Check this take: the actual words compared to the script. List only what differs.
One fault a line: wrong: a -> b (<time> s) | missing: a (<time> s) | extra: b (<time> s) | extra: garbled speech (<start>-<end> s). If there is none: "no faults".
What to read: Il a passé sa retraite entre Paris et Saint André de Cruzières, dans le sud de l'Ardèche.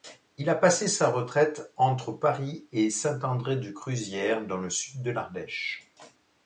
no faults